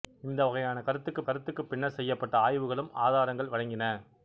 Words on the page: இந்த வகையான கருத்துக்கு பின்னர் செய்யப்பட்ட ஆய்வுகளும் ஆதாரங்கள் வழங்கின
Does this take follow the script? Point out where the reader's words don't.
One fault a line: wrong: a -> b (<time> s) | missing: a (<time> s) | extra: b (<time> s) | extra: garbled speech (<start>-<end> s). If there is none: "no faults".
extra: கருத்துக்கு (1.2 s)